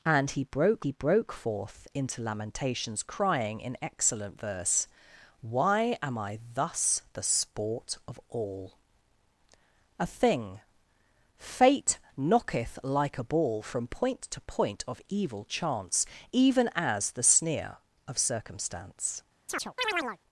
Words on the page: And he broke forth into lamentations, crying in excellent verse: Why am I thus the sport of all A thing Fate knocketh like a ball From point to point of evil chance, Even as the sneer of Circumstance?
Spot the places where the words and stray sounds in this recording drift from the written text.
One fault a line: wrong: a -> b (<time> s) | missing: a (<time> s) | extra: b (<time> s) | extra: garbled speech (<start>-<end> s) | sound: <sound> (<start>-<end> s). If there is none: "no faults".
extra: he broke (0.8 s)
sound: chirp (19.5-20.2 s)